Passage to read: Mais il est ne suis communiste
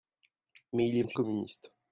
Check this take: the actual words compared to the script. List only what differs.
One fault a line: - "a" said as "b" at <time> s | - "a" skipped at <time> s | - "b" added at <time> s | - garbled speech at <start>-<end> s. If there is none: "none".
none